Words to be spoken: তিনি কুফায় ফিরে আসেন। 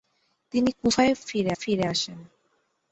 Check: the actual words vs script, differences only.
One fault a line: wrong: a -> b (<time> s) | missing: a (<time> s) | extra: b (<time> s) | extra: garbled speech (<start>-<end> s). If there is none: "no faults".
extra: ফিরে (1.6 s)